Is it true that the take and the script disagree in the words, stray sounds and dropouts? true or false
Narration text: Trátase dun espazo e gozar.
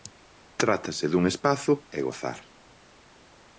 false